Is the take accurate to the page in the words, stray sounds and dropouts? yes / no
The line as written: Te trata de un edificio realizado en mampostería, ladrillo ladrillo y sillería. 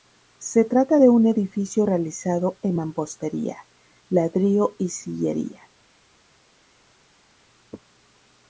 no